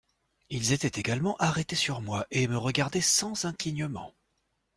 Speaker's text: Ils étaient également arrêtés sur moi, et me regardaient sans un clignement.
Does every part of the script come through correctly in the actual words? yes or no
yes